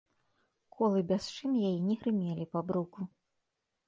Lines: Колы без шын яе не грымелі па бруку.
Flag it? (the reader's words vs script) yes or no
no